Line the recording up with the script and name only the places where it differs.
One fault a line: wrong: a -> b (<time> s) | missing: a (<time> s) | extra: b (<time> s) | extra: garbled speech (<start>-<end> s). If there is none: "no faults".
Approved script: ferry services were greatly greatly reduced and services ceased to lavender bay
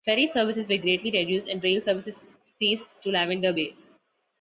missing: greatly (1.1 s)
extra: rail (1.6 s)